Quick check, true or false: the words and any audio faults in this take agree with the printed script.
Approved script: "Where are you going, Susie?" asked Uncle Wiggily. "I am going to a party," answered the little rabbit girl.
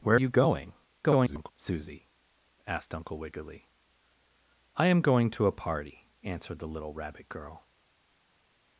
false